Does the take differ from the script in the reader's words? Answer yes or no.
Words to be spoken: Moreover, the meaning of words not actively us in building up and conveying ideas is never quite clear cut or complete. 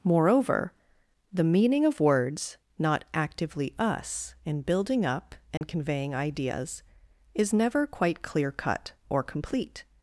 no